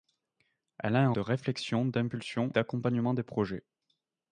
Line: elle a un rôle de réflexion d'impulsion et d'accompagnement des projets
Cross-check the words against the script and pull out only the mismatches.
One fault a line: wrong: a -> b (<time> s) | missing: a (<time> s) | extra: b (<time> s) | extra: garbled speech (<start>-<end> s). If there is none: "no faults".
missing: rôle (1.1 s)
missing: et (2.5 s)